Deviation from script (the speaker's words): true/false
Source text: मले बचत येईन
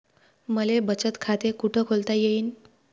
true